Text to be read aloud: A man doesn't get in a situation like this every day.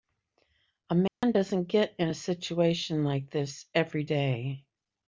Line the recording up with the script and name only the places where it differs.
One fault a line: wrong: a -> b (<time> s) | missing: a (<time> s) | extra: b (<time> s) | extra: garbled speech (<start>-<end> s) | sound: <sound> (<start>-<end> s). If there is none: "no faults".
sound: dropout (1.1-1.2 s)